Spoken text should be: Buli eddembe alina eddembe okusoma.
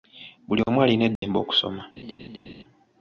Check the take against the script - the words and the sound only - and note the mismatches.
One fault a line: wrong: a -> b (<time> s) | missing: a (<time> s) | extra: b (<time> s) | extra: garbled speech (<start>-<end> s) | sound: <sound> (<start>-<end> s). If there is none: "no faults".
wrong: eddembe -> omu (0.7 s)
sound: dropout (1.2-1.2 s)
sound: laugh (2.0-2.6 s)